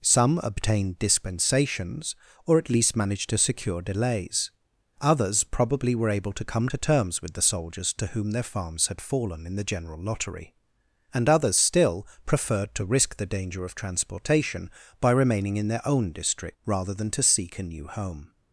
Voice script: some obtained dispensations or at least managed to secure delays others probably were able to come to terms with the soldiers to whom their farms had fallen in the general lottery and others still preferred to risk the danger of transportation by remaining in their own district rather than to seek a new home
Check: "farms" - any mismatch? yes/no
no